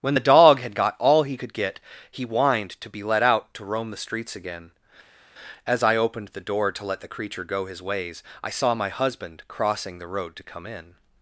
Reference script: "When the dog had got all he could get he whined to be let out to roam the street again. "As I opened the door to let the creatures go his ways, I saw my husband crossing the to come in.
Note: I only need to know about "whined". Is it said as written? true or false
true